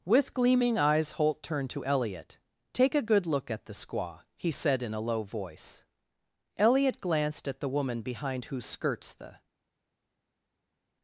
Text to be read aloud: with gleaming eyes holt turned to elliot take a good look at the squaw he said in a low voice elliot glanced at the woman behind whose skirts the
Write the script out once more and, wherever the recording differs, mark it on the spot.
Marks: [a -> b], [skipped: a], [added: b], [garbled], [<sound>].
with gleaming eyes holt turned to elliot take a good look at the squaw he said in a low voice elliot glanced at the woman behind whose skirts the